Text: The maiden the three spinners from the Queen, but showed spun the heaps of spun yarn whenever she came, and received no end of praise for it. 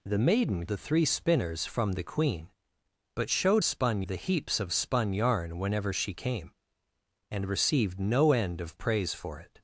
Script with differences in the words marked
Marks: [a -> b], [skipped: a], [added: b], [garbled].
The maiden the three spinners from the Queen, but showed spun the heaps of spun yarn whenever she came, and received no end of praise for it.